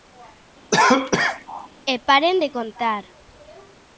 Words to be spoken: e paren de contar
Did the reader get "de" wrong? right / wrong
right